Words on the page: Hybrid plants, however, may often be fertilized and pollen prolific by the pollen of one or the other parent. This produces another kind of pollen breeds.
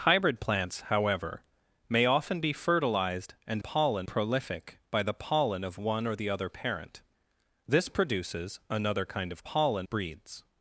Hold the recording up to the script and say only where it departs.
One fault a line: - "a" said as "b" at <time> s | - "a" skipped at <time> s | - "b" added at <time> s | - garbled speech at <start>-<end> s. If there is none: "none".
none